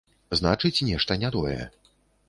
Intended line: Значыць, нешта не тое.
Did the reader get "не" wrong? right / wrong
right